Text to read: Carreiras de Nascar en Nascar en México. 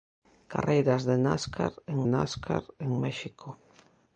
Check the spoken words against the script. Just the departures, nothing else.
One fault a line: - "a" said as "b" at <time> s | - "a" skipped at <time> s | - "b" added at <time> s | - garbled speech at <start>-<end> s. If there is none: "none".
none